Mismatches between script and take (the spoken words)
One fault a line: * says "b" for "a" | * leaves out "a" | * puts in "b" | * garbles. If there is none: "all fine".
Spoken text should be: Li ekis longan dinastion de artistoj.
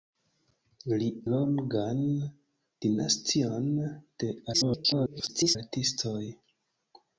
* leaves out "ekis"
* garbles